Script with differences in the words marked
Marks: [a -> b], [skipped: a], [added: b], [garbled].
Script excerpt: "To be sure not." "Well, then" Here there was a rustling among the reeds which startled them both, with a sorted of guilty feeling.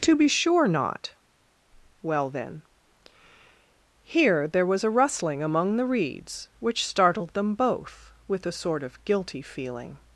"To be sure not." "Well, then" Here there was a rustling among the reeds which startled them both, with a [sorted -> sort] of guilty feeling.